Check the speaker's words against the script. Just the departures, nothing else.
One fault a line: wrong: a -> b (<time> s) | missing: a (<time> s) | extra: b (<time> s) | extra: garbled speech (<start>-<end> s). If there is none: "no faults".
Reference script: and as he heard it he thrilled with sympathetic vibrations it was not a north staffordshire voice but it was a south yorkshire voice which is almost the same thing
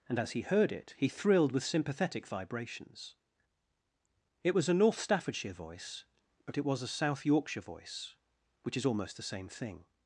missing: not (4.7 s)